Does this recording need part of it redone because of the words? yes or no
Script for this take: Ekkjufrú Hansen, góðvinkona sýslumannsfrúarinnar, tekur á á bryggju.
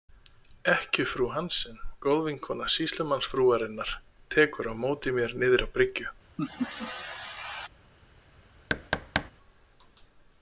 yes